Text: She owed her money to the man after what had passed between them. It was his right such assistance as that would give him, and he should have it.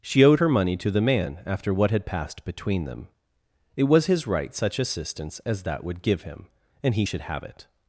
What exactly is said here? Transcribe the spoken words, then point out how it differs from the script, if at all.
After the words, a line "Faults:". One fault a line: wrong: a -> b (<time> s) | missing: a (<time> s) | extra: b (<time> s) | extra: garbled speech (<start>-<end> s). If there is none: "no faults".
She owed her money to the man after what had passed between them. It was his right such assistance as that would give him, and he should have it.
Faults:
no faults